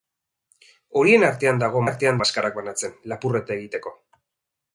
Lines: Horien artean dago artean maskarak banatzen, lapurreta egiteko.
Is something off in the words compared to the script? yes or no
no